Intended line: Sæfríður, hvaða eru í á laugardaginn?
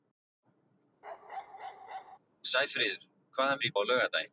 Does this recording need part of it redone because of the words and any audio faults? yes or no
yes